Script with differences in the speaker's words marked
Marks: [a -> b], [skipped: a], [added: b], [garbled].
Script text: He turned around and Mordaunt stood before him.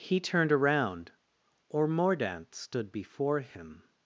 He turned around [and -> or] Mordaunt stood before him.